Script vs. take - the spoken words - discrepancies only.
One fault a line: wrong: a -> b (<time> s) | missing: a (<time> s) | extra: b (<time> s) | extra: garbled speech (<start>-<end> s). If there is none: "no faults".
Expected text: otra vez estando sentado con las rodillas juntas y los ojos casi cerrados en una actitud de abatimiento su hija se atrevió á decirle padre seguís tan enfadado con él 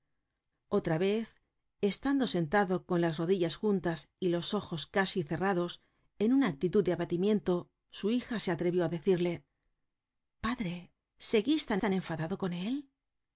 extra: tan (11.8 s)